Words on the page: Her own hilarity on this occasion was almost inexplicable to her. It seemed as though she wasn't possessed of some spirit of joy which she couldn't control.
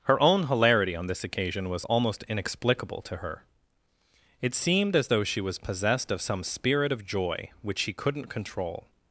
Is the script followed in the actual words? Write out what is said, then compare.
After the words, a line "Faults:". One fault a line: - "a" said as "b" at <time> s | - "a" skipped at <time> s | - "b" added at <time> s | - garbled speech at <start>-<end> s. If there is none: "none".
Her own hilarity on this occasion was almost inexplicable to her. It seemed as though she was possessed of some spirit of joy which she couldn't control.
Faults:
- "wasn't" said as "was" at 5.4 s